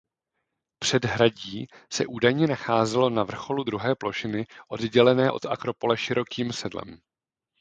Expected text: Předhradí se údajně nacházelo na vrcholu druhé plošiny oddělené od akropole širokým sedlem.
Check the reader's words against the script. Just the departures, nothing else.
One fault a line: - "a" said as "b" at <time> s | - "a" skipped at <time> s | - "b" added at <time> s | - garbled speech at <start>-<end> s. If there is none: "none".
none